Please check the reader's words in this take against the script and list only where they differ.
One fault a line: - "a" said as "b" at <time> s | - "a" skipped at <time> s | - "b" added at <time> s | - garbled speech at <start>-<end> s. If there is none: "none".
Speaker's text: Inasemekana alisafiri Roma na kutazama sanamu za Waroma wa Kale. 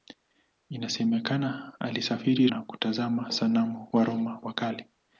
- "Roma" skipped at 2.5 s
- "za" skipped at 3.9 s